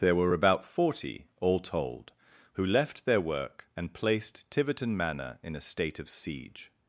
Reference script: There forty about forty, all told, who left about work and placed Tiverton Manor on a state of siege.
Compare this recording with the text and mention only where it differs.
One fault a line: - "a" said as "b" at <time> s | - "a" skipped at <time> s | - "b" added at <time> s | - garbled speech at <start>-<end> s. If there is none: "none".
- "forty" said as "were" at 0.1 s
- "about" said as "their" at 3.0 s
- "on" said as "in" at 5.4 s